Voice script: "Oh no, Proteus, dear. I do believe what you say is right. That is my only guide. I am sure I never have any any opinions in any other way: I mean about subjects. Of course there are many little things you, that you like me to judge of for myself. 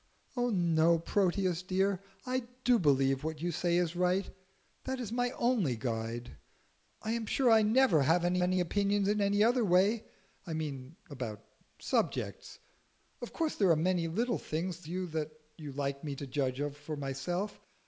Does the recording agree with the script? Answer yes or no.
yes